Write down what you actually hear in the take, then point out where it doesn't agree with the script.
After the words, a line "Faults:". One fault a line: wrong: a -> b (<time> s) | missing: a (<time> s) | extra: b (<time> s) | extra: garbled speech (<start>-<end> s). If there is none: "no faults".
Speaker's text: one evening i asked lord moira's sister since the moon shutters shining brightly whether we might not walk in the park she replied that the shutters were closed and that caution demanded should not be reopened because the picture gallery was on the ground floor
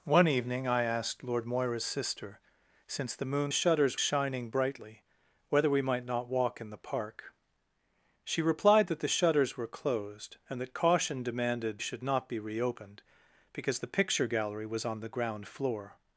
one evening i asked lord moira's sister since the moon shutters shining brightly whether we might not walk in the park she replied that the shutters were closed and that caution demanded should not be reopened because the picture gallery was on the ground floor
Faults:
no faults